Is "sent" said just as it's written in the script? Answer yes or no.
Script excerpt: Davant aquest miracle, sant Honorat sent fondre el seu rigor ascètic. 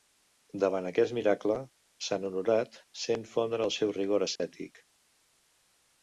yes